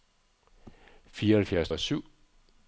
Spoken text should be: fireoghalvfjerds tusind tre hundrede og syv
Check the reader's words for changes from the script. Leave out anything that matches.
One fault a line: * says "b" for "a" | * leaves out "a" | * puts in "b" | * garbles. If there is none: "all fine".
* leaves out "tusind tre hundrede"